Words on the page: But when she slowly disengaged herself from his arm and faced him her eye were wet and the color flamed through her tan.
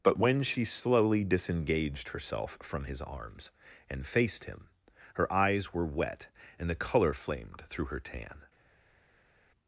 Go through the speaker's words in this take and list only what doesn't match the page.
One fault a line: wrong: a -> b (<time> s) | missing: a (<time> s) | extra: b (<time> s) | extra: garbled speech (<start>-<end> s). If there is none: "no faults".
wrong: arm -> arms (3.0 s)
wrong: eye -> eyes (5.3 s)